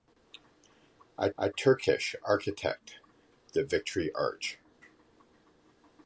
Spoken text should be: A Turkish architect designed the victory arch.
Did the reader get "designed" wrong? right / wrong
wrong